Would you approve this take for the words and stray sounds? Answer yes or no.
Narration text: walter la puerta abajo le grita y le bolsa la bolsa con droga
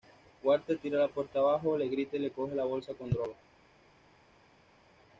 no